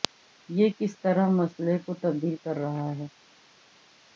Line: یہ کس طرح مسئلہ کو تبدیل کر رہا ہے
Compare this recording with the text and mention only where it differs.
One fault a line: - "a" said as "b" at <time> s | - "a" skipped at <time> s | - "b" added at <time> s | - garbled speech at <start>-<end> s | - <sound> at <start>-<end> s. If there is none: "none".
none